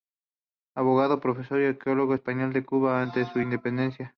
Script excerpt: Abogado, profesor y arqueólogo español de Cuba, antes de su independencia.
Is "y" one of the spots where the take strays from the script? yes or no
no